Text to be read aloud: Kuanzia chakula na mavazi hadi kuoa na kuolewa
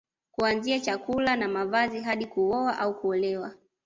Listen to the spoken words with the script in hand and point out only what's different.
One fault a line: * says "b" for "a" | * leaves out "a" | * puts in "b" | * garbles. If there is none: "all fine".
* says "au" for "na"